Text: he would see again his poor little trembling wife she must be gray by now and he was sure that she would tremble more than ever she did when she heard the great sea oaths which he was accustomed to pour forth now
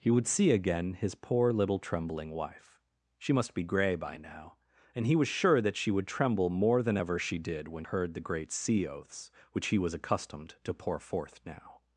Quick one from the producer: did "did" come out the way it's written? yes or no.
yes